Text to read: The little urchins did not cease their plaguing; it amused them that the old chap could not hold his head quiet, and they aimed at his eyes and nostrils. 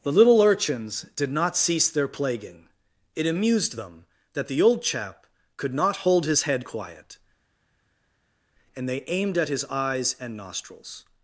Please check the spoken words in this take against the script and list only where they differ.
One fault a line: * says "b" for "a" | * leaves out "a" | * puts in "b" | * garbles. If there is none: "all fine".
all fine